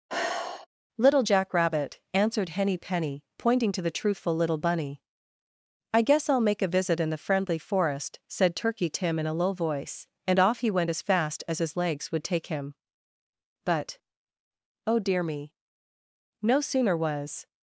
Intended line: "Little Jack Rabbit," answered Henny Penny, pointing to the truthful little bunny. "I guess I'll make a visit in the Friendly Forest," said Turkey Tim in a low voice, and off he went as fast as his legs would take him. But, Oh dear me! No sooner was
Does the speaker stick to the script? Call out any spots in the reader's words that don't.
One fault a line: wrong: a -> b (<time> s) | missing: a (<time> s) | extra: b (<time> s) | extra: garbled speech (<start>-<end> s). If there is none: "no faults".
no faults